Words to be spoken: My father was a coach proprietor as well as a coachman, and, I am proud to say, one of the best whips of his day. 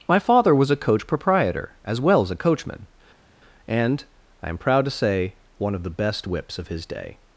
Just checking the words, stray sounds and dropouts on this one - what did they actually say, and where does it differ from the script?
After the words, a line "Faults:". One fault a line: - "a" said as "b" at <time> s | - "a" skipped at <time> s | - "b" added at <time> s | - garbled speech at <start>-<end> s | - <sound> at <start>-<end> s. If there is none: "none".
My father was a coach proprietor as well as a coachman, and, I am proud to say, one of the best whips of his day.
Faults:
none